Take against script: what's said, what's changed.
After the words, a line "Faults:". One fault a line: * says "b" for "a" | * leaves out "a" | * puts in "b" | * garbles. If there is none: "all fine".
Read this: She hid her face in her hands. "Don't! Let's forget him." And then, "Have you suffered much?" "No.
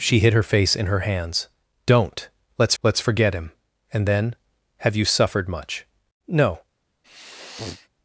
She hid her face in her hands. "Don't! Let's let's forget him." And then, "Have you suffered much?" "No.
Faults:
* puts in "let's"